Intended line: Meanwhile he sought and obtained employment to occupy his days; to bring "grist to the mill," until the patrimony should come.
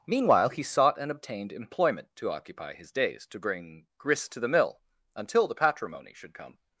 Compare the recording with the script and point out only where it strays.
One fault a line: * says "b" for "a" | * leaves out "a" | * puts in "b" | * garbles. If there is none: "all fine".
all fine